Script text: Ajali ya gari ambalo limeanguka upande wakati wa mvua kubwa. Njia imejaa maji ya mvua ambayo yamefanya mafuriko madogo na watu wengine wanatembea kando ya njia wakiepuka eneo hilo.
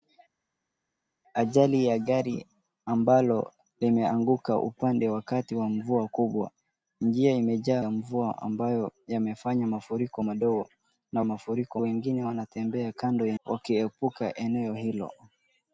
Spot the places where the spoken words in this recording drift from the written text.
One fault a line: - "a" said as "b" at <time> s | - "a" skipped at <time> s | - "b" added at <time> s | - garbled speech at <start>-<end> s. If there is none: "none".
- "maji" skipped at 7.8 s
- "watu" said as "mafuriko" at 11.2 s
- "njia" skipped at 13.4 s